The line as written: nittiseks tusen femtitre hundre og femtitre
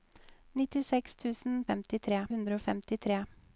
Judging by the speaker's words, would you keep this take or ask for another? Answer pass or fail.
pass